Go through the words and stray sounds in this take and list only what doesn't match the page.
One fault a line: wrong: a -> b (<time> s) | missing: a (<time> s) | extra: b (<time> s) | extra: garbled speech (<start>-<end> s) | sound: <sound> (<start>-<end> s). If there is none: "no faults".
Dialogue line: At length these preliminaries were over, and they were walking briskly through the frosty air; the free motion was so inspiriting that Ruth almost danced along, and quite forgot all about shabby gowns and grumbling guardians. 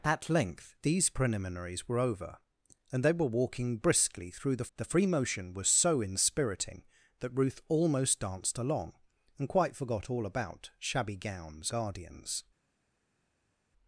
missing: frosty air (4.7 s)
missing: and grumbling (11.7 s)